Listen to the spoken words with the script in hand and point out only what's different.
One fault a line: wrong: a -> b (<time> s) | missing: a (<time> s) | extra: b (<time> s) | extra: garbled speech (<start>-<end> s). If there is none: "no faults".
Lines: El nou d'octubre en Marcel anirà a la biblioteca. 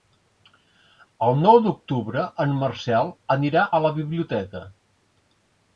no faults